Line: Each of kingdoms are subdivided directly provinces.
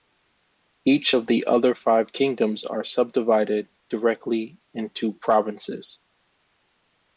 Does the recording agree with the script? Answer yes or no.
no